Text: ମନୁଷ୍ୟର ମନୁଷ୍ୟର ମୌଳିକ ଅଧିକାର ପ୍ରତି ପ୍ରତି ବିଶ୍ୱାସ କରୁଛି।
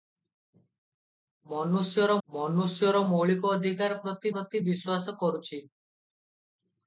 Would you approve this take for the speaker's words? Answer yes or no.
yes